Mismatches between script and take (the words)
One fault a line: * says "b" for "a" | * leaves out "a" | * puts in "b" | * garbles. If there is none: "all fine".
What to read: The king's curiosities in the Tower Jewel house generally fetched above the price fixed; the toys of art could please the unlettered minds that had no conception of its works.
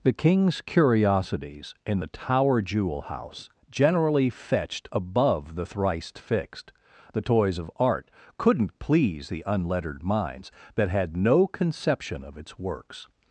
* says "thrice" for "price"
* says "couldn't" for "could"